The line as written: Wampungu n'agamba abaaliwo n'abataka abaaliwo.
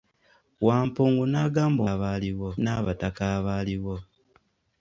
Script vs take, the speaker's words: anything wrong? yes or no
no